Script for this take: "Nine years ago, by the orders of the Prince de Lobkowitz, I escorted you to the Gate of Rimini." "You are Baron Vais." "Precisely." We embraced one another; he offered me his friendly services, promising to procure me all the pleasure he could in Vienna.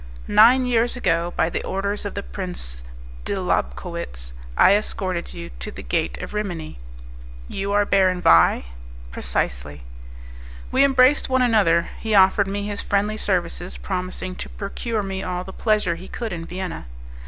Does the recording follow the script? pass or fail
pass